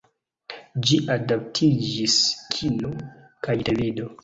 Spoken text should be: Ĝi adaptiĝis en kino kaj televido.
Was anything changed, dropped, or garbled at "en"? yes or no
yes